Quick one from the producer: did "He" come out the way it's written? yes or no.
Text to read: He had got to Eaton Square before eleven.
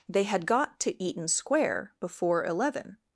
no